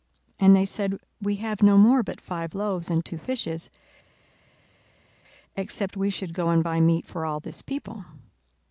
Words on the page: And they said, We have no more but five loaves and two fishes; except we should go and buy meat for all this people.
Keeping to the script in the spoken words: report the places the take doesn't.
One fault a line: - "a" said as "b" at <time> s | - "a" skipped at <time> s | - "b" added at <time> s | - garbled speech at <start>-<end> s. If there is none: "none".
none